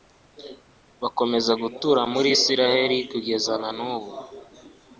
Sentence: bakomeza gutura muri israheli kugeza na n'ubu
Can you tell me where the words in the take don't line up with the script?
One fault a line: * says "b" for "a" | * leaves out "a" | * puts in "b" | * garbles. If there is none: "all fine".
all fine